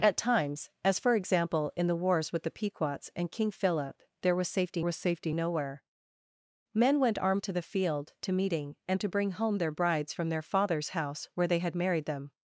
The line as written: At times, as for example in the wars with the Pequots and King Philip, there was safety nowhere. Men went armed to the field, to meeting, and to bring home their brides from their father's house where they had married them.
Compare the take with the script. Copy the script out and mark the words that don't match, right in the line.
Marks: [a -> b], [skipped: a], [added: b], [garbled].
At times, as for example in the wars with the Pequots and King Philip, there was safety [added: was safety] nowhere. Men went armed to the field, to meeting, and to bring home their brides from their father's house where they had married them.